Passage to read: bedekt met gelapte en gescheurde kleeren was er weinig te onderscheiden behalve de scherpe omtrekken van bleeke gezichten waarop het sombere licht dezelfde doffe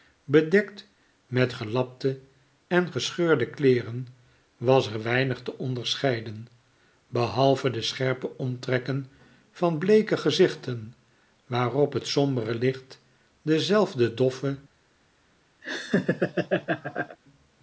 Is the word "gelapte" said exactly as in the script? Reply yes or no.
yes